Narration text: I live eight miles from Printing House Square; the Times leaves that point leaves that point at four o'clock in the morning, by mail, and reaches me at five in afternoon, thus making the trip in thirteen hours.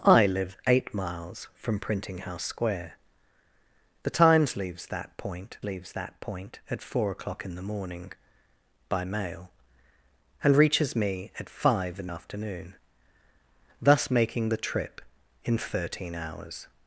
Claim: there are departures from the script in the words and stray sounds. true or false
false